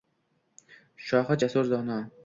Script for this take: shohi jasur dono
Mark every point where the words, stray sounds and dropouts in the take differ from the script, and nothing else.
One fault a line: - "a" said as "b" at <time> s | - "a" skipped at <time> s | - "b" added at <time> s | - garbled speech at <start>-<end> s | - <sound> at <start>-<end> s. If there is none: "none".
none